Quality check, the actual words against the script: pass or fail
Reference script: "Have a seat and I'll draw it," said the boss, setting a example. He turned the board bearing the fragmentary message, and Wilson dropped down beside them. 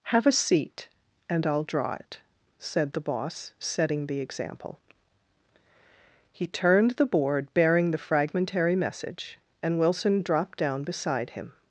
fail